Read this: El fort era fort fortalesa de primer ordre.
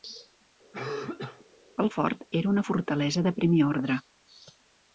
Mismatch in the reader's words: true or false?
true